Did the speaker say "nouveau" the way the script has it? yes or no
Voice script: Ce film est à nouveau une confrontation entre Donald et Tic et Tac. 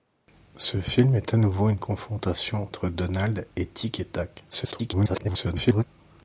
yes